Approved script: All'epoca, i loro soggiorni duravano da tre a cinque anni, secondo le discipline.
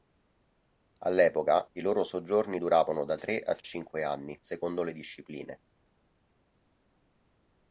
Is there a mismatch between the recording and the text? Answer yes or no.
no